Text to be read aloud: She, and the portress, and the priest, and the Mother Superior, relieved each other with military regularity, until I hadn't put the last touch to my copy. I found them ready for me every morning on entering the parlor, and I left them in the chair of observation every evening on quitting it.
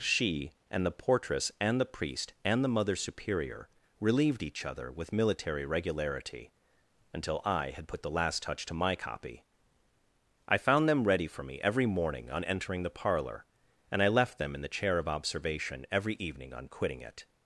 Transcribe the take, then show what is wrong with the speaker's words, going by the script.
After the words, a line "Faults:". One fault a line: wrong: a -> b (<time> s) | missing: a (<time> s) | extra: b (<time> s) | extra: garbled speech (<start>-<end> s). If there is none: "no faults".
She, and the portress, and the priest, and the Mother Superior, relieved each other with military regularity, until I had put the last touch to my copy. I found them ready for me every morning on entering the parlor, and I left them in the chair of observation every evening on quitting it.
Faults:
wrong: hadn't -> had (7.7 s)